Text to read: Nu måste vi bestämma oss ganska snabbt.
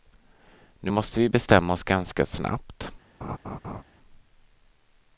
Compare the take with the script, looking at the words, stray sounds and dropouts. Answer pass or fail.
fail